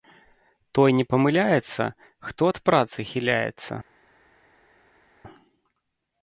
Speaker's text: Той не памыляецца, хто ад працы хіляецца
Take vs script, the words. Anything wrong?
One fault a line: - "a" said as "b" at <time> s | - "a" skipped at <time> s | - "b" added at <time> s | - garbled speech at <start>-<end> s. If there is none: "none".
none